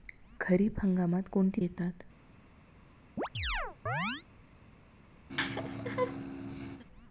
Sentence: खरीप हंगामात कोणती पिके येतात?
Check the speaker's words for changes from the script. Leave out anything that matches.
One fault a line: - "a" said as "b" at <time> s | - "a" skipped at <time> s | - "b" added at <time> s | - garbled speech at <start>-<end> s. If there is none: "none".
- "पिके" skipped at 1.6 s